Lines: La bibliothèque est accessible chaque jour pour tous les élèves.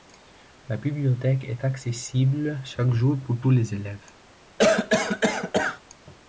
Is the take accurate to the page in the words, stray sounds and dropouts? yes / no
no